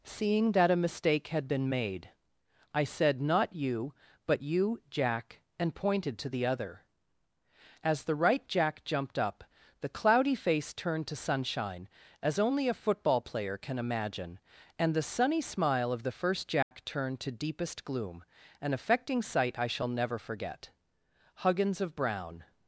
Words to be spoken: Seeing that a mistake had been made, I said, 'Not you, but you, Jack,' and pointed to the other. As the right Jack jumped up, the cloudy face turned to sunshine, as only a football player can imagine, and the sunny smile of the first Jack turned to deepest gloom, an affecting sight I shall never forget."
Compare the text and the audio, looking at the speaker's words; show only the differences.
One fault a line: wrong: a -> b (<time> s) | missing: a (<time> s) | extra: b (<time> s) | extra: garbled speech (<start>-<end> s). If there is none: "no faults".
extra: Huggins of Brown (21.3 s)